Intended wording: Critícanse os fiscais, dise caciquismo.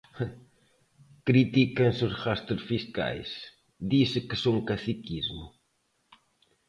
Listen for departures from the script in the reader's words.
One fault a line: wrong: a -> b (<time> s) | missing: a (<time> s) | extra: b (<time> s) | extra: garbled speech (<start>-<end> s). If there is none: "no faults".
extra: gastos (2.2 s)
extra: que son (4.3 s)